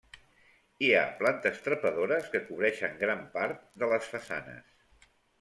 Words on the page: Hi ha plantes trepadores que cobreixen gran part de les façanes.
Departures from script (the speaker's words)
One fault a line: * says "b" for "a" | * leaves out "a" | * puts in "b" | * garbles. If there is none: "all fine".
all fine